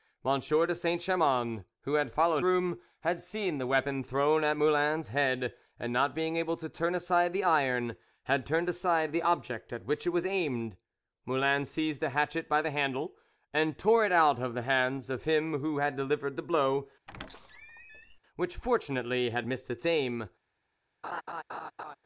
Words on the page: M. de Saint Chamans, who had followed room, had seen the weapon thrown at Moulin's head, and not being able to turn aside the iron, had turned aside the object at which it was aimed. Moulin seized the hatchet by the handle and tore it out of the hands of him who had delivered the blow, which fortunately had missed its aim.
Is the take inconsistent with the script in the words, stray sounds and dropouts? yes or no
yes